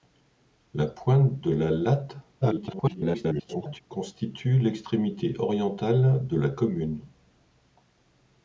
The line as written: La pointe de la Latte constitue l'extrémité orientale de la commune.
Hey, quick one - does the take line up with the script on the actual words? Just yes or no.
no